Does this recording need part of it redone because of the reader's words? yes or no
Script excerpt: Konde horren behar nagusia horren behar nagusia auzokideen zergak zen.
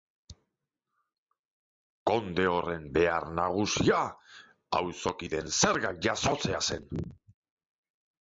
yes